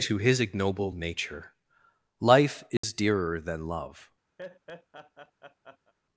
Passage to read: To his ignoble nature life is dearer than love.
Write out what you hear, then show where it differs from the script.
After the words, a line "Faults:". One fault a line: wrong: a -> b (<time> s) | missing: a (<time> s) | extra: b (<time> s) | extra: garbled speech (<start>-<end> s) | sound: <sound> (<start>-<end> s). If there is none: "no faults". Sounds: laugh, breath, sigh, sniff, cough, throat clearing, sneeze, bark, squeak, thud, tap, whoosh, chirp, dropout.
To his ignoble nature life is dearer than love.
Faults:
sound: dropout (2.8-2.8 s)
sound: laugh (4.4-5.9 s)